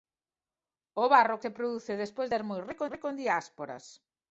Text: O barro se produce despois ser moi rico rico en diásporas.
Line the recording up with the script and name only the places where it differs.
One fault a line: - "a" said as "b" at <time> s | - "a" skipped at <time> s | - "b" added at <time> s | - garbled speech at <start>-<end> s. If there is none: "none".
none